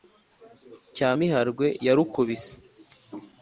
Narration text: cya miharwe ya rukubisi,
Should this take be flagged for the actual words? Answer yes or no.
no